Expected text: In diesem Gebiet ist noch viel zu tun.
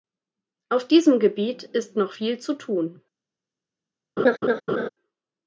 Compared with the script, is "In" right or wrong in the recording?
wrong